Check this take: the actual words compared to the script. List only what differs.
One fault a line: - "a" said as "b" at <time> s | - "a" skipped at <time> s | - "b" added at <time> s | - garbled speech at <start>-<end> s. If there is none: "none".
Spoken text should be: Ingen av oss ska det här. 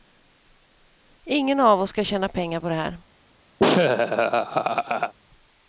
- "tjäna pengar på" added at 2.0 s